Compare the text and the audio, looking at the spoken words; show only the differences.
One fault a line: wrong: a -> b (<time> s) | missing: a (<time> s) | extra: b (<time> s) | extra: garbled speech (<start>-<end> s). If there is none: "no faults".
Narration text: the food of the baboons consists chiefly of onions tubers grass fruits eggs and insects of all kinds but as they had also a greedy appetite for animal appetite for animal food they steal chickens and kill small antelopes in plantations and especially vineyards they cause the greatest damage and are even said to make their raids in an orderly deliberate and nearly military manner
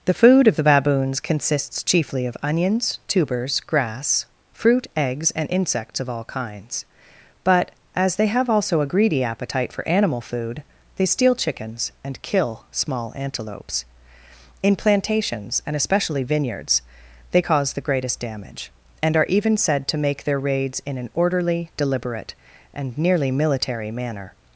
wrong: fruits -> fruit (4.5 s)
wrong: had -> have (8.2 s)
missing: appetite for animal (10.2 s)